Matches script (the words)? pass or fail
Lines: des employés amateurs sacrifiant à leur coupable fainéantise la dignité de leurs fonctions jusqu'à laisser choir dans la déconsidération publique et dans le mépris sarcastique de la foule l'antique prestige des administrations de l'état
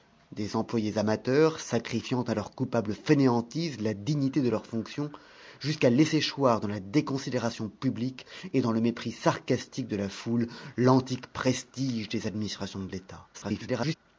fail